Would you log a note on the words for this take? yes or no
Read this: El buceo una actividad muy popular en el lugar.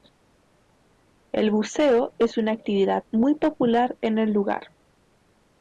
yes